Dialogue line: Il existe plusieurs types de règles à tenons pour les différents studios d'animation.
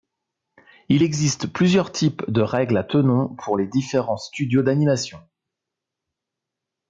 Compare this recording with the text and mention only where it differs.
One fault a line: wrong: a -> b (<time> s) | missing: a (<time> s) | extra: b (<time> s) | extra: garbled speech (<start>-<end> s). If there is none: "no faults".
no faults